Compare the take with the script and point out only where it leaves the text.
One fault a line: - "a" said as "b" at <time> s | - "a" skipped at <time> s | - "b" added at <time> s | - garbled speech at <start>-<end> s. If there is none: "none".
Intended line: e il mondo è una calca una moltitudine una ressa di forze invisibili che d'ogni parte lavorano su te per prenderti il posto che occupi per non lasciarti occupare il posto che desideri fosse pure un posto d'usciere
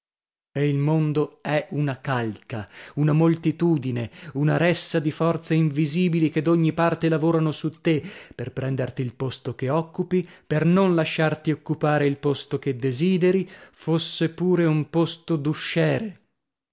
none